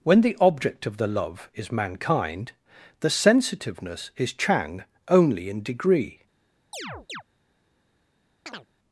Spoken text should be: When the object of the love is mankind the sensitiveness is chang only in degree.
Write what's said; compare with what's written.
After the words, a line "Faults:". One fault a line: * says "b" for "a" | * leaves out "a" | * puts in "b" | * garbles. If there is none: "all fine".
When the object of the love is mankind the sensitiveness is chang only in degree.
Faults:
all fine